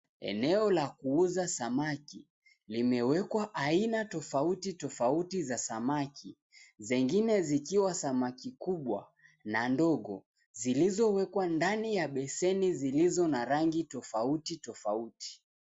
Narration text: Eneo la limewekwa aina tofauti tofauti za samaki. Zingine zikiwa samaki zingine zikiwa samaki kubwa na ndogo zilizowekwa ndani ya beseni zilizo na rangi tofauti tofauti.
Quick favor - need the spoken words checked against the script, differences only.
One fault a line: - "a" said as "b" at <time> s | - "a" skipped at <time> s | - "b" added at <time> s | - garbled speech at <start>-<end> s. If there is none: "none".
- "kuuza samaki" added at 0.9 s
- "zingine zikiwa samaki" skipped at 8.5 s